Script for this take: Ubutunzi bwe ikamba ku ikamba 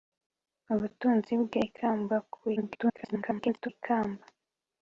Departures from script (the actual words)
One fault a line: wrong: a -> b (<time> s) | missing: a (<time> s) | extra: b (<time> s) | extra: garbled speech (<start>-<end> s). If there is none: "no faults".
extra: garbled speech (2.6-3.7 s)